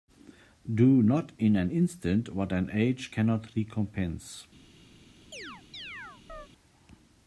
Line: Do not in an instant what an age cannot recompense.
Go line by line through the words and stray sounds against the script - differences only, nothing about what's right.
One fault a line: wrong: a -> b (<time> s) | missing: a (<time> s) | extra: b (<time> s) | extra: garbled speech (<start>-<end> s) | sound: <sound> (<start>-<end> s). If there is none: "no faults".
sound: chirp (5.3-6.5 s)